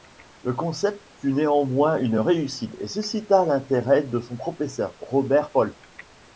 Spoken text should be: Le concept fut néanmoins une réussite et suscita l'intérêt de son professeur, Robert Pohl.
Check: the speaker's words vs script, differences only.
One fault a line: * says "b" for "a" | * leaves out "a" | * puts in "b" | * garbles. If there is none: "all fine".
all fine